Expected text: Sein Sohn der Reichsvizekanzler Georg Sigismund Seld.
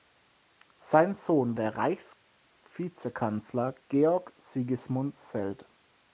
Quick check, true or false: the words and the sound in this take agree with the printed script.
true